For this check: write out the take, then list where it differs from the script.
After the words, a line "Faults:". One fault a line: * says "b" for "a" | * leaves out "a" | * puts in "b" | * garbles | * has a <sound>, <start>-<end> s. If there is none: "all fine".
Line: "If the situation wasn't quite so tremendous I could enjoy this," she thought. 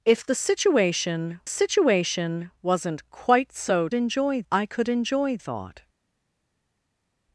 "If the situation situation wasn't quite so enjoy I could enjoy thought.
Faults:
* puts in "situation"
* says "enjoy" for "tremendous"
* leaves out "this she"